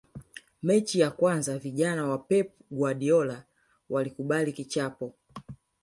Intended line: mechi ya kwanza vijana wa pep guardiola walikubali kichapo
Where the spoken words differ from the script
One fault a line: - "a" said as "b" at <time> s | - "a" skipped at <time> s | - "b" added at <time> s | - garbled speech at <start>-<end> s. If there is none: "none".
none